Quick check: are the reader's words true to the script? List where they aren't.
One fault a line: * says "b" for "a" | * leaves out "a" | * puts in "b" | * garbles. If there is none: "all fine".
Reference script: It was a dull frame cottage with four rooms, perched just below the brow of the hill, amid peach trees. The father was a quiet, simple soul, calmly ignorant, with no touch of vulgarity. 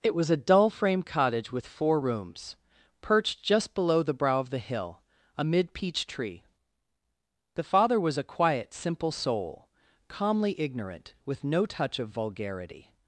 * says "tree" for "trees"